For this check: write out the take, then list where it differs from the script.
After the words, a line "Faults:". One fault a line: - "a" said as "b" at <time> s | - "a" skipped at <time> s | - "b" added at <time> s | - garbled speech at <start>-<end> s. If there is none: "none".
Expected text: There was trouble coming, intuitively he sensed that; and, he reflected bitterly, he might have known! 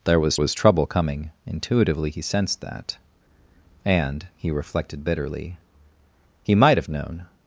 There was was trouble coming, intuitively he sensed that; and, he reflected bitterly, he might have known!
Faults:
- "was" added at 0.4 s